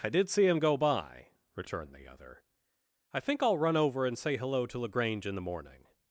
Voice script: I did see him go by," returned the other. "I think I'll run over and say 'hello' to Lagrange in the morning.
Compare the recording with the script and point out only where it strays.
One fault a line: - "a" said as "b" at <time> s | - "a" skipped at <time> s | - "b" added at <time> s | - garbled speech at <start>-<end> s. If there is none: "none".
none